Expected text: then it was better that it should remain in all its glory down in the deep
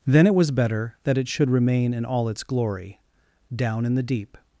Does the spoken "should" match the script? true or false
true